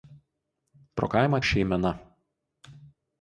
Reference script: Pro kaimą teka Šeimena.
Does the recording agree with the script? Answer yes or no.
no